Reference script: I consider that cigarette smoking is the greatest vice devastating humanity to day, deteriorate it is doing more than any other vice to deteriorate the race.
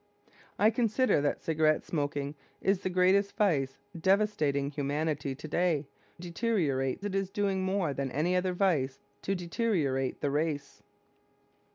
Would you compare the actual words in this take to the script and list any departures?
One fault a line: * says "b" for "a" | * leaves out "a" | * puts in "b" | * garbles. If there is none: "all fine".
all fine